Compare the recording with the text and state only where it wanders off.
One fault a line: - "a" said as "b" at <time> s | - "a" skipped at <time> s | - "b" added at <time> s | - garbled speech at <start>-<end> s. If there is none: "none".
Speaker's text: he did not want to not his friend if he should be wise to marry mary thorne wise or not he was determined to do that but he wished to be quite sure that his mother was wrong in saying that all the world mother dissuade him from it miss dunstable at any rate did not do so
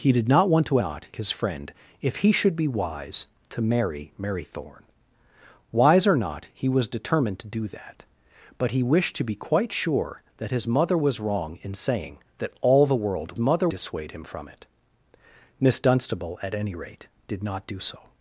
none